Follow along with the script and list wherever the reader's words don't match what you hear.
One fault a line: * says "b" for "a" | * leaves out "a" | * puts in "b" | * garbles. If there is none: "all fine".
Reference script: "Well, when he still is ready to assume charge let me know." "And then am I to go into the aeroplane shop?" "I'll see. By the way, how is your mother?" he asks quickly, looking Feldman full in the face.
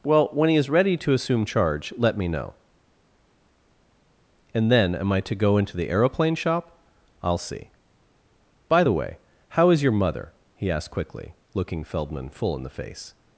* leaves out "still"
* says "asked" for "asks"